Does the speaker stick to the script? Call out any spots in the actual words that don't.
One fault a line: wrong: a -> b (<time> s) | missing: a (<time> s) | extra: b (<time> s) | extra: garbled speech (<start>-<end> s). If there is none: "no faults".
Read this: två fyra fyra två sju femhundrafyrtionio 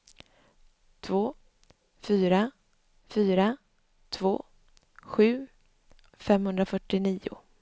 no faults